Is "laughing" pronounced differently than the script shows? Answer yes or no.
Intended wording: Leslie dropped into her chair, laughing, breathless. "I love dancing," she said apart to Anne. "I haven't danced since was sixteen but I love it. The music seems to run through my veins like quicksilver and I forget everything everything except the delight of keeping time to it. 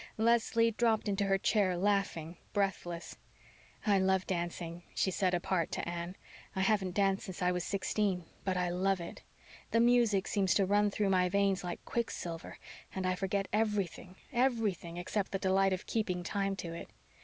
no